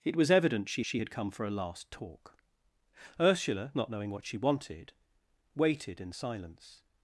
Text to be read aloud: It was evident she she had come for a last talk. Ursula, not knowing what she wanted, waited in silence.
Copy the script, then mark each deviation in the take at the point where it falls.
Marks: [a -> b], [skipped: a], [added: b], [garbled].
It was evident she she had come for a last talk. Ursula, not knowing what she wanted, waited in silence.